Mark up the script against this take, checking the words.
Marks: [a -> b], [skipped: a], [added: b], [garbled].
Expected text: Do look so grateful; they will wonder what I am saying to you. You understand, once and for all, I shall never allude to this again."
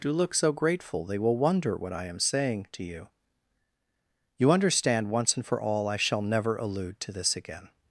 Do look so grateful; they will wonder what I am saying to you. You understand, once and for all, I shall never allude to this again."